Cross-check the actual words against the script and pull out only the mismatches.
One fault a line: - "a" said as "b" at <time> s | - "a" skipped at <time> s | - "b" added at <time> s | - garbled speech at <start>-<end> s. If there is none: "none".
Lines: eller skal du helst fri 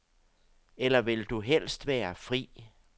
- "skal" said as "vil" at 1.0 s
- "være" added at 1.9 s